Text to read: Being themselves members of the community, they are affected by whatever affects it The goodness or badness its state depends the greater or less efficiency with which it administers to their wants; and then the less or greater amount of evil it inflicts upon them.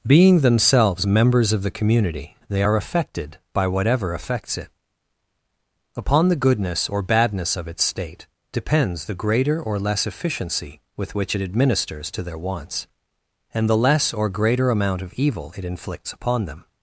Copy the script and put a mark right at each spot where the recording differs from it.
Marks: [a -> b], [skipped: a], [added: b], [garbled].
Being themselves members of the community, they are affected by whatever affects it [added: Upon] The goodness or badness [added: of] its state depends the greater or less efficiency with which it administers to their wants; and [skipped: then] the less or greater amount of evil it inflicts upon them.